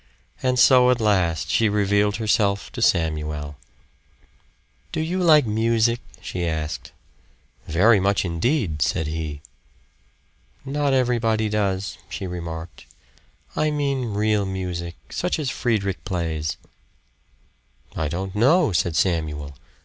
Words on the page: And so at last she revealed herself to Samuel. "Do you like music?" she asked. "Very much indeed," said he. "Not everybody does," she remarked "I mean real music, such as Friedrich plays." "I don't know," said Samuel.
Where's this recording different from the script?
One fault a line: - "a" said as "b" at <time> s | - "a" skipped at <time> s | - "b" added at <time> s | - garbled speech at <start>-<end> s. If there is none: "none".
none